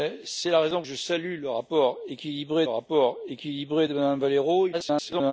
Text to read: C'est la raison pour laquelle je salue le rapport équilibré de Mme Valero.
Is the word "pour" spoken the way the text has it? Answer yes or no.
no